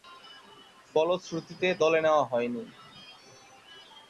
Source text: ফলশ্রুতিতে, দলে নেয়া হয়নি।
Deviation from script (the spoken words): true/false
false